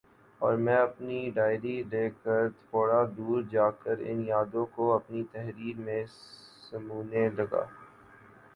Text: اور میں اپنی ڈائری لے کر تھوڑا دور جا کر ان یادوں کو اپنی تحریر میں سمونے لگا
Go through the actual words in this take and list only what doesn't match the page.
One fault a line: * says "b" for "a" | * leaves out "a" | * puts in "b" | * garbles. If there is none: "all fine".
all fine